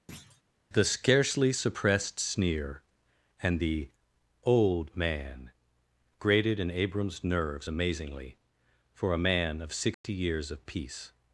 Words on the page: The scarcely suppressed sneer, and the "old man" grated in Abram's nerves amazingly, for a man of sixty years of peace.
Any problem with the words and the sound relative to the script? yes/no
yes